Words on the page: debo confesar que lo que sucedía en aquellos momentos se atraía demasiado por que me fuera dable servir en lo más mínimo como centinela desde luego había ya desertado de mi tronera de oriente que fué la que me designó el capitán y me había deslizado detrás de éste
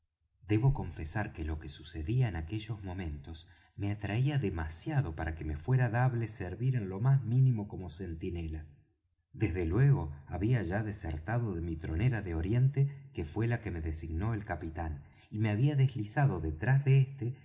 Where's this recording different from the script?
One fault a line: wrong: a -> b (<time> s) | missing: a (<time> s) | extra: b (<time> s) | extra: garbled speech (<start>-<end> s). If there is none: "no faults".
wrong: se -> me (3.8 s)
wrong: por -> para (5.2 s)